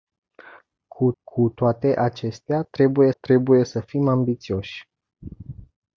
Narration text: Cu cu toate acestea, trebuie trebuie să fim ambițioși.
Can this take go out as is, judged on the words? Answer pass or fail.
pass